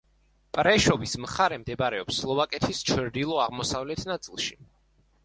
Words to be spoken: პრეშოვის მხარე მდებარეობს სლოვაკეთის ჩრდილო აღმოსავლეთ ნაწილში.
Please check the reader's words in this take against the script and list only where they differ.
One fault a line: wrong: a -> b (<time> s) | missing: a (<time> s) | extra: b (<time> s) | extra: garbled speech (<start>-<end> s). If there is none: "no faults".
no faults